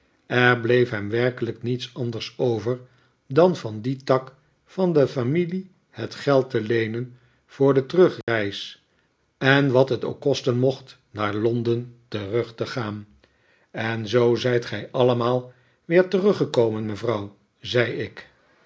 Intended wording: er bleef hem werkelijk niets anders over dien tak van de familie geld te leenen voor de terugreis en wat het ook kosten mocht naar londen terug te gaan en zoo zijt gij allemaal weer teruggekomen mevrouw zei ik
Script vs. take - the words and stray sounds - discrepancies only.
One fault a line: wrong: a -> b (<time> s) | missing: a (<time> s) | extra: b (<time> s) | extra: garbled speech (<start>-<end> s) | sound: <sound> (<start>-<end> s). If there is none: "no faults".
extra: dan van (3.3 s)
extra: het (5.9 s)
sound: dropout (8.2-8.3 s)